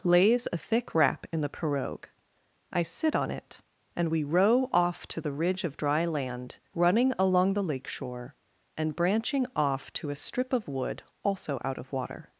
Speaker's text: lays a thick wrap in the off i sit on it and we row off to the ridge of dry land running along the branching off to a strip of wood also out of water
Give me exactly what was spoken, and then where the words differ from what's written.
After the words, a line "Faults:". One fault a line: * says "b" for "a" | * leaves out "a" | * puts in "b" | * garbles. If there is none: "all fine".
lays a thick wrap in the pirogue i sit on it and we row off to the ridge of dry land running along the lake shore and branching off to a strip of wood also out of water
Faults:
* says "pirogue" for "off"
* puts in "lake shore and"